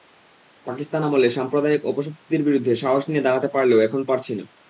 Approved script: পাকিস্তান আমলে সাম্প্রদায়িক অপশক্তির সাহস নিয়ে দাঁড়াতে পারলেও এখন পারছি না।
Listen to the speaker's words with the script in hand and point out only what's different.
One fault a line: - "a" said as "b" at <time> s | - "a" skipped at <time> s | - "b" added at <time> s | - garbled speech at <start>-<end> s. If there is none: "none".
- "বিরুদ্ধে" added at 2.5 s